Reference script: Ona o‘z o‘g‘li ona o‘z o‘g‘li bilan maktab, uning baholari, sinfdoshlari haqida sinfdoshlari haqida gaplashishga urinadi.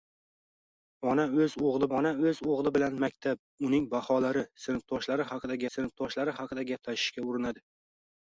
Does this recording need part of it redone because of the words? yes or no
no